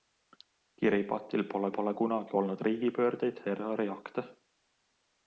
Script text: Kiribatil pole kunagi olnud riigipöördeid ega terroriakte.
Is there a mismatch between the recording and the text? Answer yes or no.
yes